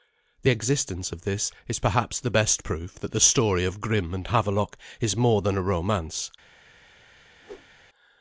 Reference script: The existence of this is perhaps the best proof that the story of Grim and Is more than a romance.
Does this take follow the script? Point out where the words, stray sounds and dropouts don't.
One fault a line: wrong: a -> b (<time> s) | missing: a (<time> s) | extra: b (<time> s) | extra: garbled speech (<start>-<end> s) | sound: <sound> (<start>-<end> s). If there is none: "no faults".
extra: Havelok (4.2 s)
sound: whoosh (7.4-7.7 s)